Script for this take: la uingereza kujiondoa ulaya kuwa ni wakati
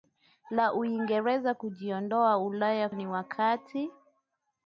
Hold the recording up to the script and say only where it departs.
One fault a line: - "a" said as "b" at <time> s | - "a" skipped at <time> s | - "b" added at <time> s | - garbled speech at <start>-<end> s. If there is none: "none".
- "kuwa" skipped at 2.9 s